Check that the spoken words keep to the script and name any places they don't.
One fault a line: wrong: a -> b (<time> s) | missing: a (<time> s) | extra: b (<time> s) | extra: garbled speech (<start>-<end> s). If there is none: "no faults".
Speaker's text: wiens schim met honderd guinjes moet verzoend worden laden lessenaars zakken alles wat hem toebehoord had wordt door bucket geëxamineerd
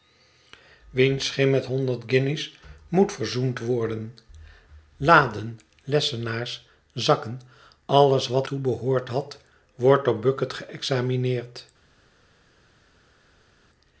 missing: hem (8.5 s)